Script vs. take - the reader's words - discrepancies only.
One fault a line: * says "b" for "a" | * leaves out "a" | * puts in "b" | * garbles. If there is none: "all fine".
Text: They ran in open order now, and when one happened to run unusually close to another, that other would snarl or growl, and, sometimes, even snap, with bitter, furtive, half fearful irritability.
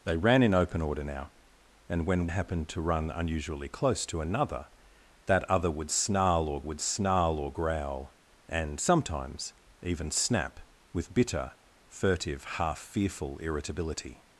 * leaves out "one"
* puts in "would snarl or"